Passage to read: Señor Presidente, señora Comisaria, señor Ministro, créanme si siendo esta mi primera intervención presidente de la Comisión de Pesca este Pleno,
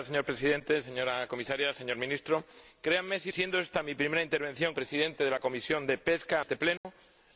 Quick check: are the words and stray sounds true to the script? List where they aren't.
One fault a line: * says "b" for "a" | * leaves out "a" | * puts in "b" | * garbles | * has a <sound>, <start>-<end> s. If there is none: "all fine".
* has a dropout, 6.8-6.8 s